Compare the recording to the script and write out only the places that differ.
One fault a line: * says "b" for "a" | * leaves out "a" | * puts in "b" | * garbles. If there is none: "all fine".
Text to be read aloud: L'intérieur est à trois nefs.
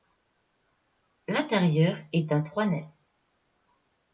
all fine